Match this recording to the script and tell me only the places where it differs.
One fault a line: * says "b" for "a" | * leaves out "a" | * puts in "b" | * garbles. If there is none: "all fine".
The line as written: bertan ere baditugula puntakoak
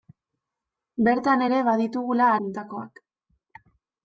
all fine